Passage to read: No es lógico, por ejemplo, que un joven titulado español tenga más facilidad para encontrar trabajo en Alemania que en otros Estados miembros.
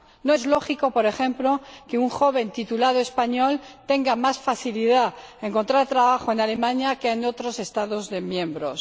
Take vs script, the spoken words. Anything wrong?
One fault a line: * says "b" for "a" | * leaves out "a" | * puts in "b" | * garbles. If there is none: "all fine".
all fine